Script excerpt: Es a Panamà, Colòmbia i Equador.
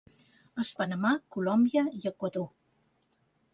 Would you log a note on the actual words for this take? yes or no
no